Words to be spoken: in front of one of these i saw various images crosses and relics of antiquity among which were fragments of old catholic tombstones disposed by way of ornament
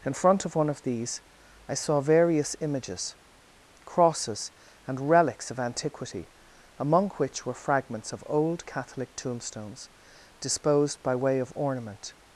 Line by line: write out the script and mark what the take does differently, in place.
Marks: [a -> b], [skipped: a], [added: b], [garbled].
in front of one of these i saw various images crosses and relics of antiquity among which were fragments of old catholic tombstones disposed by way of ornament